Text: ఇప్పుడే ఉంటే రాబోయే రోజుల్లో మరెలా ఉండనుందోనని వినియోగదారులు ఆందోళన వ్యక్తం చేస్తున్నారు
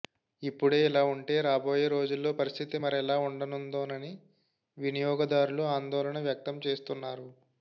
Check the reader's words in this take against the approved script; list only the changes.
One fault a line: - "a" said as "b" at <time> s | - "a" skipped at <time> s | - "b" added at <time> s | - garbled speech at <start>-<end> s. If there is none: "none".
- "ఇలా" added at 0.9 s
- "పరిస్థితి" added at 2.4 s